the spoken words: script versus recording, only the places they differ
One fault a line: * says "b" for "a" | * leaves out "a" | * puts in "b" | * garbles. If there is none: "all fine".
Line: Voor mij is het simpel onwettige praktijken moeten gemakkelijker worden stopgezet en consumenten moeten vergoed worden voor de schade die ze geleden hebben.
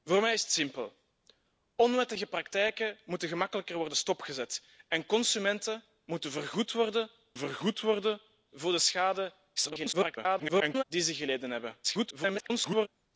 * puts in "vergoed worden"
* garbles
* garbles